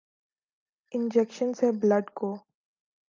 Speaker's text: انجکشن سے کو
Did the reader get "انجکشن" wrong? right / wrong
right